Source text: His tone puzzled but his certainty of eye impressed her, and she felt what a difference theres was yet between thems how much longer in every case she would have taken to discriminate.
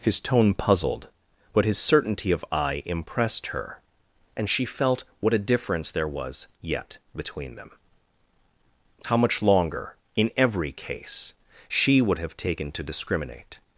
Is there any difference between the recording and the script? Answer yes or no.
yes